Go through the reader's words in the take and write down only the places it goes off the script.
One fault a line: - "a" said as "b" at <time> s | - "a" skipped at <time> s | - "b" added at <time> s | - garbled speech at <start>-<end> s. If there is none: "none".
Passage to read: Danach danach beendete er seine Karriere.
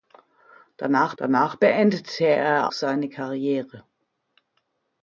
none